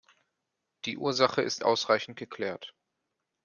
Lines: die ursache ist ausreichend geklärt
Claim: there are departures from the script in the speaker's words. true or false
false